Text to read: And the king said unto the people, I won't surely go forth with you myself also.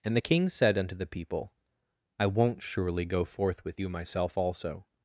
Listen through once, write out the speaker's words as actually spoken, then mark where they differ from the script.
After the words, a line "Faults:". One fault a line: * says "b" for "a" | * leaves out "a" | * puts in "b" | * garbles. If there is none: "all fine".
And the king said unto the people, I won't surely go forth with you myself also.
Faults:
all fine